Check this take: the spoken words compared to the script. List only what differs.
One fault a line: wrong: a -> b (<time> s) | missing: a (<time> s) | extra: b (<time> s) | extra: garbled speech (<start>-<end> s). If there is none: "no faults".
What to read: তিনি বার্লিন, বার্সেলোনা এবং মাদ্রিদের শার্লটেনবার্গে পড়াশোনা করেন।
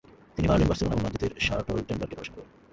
no faults